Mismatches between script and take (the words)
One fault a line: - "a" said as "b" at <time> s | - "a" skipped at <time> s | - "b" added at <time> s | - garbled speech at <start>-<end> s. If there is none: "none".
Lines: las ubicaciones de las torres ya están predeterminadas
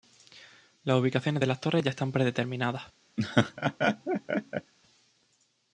none